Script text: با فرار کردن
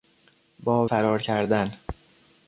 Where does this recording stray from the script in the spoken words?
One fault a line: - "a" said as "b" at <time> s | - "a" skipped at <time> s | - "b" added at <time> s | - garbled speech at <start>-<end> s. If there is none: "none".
none